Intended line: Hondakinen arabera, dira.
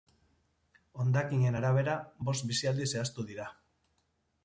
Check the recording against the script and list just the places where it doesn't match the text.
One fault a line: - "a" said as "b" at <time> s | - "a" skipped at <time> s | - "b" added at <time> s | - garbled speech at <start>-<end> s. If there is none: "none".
- "bost bizialdi zehaztu" added at 2.3 s